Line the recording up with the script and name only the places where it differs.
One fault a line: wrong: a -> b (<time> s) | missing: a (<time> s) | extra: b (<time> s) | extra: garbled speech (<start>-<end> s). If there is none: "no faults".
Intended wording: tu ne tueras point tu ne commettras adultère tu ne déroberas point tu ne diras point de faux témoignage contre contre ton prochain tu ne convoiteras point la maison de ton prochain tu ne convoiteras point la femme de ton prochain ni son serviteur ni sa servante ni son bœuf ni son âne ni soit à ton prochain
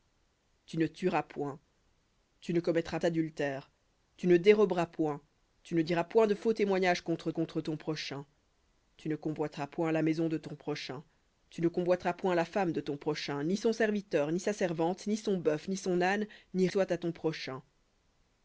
no faults